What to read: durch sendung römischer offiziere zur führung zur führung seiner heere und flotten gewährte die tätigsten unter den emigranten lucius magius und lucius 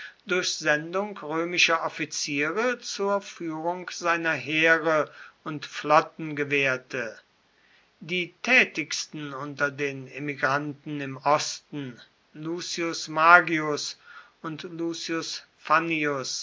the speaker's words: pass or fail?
fail